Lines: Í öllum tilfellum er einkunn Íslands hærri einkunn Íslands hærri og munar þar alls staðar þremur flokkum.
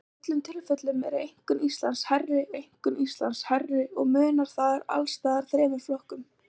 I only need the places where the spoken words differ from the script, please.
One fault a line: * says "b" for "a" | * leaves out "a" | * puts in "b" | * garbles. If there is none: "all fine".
all fine